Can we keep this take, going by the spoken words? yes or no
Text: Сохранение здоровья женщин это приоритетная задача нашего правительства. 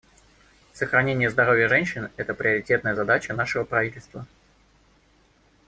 yes